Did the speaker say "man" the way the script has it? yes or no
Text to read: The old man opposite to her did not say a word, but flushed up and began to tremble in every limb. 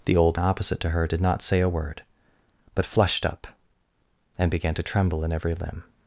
no